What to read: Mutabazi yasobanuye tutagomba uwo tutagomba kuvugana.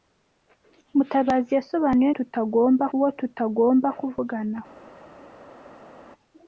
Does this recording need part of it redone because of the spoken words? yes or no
no